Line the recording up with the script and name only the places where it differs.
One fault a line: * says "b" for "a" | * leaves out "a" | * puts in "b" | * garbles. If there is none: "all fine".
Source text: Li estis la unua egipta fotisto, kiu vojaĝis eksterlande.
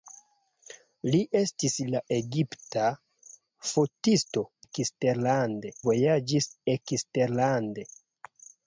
* leaves out "unua"
* says "eksterlande" for "kiu"